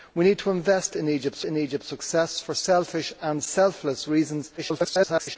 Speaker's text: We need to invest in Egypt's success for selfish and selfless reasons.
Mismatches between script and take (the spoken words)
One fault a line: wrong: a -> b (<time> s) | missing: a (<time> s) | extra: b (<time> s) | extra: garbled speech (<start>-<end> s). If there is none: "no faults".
extra: in Egypt's (1.4 s)
extra: garbled speech (4.6-5.4 s)